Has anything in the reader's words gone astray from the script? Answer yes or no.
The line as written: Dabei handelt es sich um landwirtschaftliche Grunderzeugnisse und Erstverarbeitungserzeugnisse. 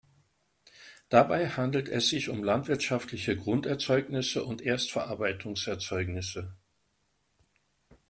no